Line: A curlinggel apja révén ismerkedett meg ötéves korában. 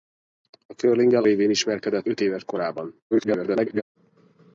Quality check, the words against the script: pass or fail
fail